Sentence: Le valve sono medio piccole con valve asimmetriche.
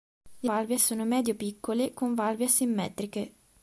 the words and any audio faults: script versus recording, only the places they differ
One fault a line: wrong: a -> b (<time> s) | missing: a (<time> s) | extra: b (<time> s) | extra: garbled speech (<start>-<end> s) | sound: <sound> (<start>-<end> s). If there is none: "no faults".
no faults